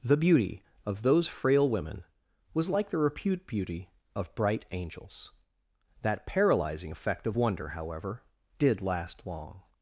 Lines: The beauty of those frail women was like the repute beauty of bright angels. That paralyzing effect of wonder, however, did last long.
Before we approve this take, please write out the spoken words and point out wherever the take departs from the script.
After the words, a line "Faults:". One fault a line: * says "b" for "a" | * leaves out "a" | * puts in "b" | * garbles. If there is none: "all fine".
The beauty of those frail women was like the repute beauty of bright angels. That paralyzing effect of wonder, however, did last long.
Faults:
all fine